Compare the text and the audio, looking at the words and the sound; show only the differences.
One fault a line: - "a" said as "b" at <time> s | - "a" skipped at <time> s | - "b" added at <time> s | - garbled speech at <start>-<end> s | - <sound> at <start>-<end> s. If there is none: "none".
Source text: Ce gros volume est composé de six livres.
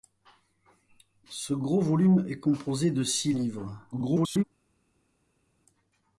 - garbled speech at 3.9-4.4 s